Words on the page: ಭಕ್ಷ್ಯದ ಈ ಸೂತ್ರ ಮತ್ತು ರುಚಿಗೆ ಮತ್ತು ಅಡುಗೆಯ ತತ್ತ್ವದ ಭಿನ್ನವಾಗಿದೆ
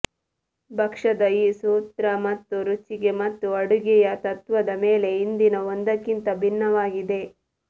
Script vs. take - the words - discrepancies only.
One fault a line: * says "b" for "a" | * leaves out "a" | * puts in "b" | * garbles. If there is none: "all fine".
* puts in "ಮೇಲೆ ಹಿಂದಿನ ಒಂದಕ್ಕಿಂತ"